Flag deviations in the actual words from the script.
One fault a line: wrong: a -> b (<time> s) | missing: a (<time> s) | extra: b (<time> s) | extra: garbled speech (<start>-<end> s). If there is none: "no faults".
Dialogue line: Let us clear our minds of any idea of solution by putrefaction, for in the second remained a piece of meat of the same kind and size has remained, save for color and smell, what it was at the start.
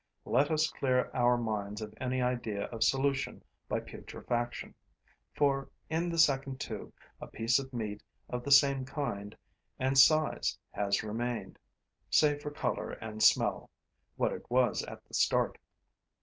wrong: remained -> tube (6.6 s)